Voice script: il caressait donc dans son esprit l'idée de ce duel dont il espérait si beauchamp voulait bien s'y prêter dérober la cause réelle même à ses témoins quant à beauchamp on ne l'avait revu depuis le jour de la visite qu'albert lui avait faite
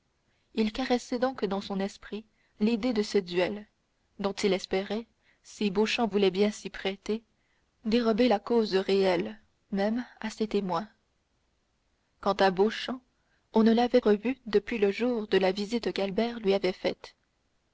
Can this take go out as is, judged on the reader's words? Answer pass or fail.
pass